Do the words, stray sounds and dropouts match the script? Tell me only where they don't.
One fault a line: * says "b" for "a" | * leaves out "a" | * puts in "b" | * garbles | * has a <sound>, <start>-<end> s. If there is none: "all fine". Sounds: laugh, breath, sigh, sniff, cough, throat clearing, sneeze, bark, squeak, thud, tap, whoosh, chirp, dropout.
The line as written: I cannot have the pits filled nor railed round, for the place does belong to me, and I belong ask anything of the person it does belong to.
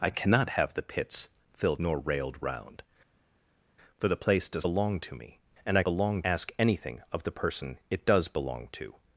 all fine